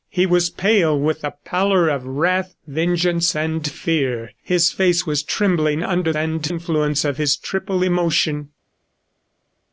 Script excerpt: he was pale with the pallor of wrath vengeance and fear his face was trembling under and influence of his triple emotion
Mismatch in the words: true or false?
false